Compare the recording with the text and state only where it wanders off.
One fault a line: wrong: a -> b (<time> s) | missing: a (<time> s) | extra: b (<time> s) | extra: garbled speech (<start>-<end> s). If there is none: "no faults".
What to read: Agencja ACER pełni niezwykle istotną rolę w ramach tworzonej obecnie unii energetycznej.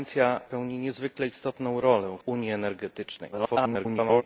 missing: ACER (0.4 s)
missing: ramach tworzonej obecnie (2.2 s)
extra: garbled speech (3.3-4.2 s)